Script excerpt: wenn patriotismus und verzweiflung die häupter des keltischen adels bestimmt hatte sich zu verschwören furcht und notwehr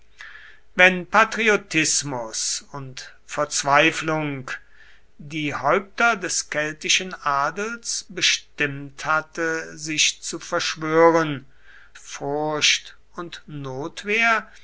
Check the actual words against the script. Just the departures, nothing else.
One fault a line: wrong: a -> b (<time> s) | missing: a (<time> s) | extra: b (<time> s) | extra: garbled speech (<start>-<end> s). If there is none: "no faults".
no faults